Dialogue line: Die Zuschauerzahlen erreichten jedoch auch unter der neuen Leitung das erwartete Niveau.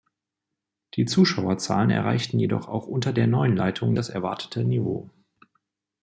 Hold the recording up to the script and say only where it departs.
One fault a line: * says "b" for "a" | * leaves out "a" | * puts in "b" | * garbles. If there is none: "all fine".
all fine